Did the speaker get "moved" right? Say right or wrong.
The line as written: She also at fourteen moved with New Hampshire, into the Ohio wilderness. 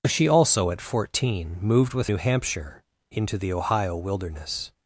right